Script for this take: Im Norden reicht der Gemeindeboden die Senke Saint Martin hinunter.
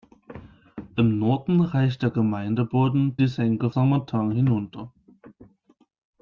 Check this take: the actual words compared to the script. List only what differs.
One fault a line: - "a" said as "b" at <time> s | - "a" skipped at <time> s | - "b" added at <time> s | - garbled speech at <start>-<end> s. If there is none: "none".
none